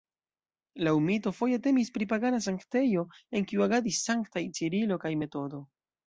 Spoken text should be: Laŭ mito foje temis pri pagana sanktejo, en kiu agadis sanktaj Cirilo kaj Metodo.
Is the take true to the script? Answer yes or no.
yes